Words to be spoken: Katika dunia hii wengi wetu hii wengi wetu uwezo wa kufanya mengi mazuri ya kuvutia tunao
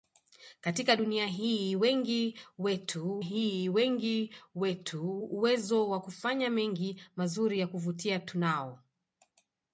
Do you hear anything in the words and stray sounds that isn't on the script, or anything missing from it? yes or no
no